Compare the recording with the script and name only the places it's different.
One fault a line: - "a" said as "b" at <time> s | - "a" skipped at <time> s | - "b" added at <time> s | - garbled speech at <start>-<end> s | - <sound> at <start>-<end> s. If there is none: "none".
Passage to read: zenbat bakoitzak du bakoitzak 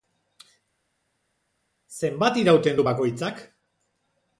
- "bakoitzak" said as "irauten" at 2.4 s